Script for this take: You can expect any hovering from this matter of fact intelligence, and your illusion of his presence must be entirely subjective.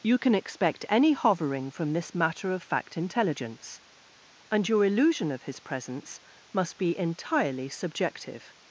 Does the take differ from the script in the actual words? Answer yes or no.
no